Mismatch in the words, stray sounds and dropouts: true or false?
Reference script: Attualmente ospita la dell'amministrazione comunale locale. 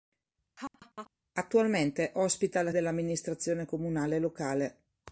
true